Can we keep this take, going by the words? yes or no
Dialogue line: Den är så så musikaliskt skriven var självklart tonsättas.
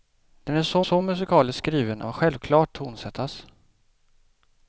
yes